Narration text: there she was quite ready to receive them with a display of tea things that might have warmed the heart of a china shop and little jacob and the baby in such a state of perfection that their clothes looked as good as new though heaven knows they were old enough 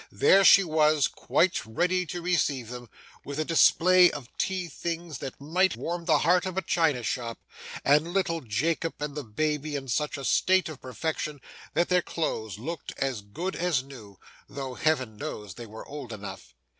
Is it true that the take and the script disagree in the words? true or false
true